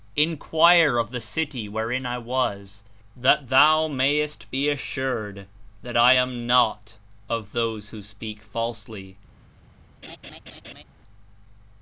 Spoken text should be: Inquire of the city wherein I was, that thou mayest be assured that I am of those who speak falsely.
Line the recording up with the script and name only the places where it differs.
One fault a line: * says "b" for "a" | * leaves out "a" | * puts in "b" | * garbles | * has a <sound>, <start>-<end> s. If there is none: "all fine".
* puts in "not"
* has a laugh, 10.0-10.8 s